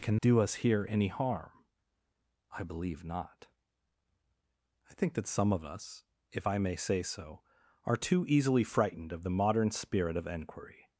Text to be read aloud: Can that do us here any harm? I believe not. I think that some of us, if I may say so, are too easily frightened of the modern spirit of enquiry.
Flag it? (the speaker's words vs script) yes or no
yes